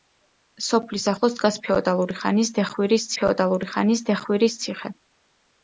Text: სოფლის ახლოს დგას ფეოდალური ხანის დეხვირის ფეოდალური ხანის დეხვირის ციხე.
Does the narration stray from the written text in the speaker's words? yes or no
no